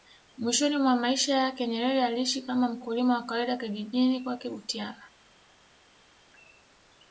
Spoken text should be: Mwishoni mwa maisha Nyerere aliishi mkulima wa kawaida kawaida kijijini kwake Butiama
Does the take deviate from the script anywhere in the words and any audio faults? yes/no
yes